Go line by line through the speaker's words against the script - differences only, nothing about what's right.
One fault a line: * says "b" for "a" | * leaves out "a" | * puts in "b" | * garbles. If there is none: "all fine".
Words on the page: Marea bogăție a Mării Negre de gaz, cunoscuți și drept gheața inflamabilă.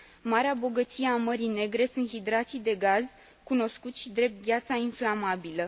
* puts in "sunt hidrații"